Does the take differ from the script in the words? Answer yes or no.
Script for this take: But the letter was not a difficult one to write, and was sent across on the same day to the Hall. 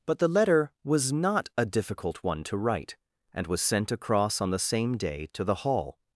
no